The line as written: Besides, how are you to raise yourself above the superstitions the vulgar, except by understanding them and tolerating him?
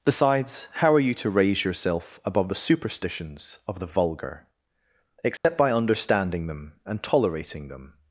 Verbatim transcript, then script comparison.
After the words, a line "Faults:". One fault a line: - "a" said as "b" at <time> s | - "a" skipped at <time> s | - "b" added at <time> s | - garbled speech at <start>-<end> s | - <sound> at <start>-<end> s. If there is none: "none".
Besides, how are you to raise yourself above the superstitions of the vulgar, except by understanding them and tolerating them?
Faults:
- "of" added at 3.7 s
- dropout at 5.4-5.4 s
- "him" said as "them" at 7.7 s